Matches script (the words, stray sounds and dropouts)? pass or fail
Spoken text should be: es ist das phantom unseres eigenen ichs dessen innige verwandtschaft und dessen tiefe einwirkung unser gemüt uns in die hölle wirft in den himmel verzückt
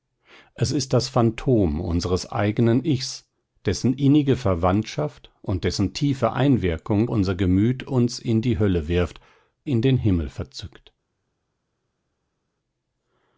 pass